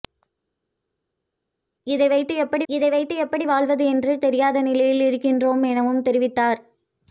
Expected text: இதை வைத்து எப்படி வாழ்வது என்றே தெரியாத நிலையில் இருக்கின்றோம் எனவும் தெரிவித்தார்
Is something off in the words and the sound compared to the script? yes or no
yes